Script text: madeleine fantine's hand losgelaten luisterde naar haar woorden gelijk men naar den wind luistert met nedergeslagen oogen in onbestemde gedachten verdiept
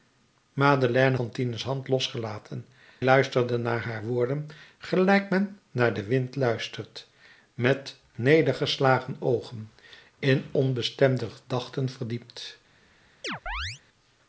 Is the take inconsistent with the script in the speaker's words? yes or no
no